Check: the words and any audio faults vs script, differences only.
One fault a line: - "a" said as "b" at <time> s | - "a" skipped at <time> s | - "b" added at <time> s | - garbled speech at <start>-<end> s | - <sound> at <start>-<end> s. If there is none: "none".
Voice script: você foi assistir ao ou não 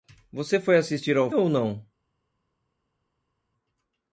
none